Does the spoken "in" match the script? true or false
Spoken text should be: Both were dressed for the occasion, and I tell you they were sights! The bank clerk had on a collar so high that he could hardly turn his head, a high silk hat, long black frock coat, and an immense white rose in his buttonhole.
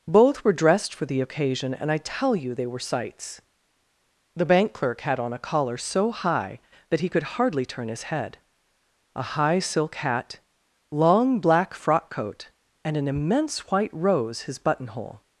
false